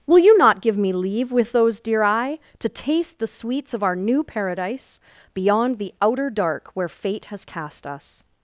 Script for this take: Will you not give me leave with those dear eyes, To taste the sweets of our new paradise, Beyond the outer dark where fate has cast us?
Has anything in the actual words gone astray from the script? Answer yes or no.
yes